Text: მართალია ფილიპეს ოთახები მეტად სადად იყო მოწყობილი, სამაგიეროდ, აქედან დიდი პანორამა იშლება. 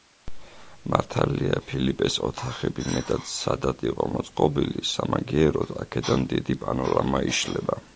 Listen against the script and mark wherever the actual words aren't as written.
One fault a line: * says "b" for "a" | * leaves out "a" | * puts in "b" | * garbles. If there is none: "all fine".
all fine